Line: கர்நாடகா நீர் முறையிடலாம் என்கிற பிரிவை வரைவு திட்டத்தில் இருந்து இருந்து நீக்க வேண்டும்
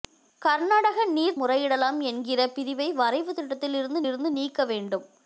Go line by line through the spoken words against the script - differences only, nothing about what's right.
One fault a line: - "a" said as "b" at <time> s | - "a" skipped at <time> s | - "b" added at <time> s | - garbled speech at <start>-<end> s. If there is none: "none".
none